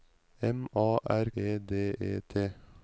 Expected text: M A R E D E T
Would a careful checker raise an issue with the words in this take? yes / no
no